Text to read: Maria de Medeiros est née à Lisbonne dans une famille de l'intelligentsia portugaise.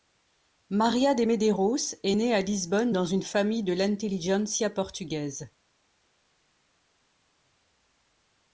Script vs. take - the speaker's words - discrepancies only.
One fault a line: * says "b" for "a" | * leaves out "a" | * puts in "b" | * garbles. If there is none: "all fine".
all fine